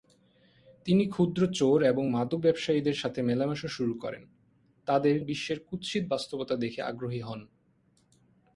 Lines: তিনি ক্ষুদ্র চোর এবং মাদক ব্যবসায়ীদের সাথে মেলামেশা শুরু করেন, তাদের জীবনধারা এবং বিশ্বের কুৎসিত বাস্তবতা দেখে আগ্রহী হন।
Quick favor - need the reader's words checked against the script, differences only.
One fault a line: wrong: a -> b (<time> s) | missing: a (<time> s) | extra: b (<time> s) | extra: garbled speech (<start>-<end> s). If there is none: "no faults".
missing: জীবনধারা এবং (5.1 s)